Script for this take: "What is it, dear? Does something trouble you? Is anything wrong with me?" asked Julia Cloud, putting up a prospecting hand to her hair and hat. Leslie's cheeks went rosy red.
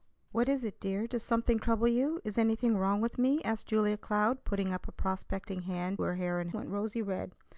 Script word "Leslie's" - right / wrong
wrong